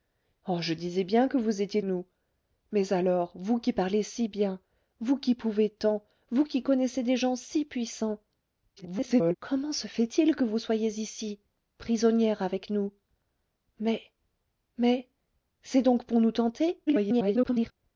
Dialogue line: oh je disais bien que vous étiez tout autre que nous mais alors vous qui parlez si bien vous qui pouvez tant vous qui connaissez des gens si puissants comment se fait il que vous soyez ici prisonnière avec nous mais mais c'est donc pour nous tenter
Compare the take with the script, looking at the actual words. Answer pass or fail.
fail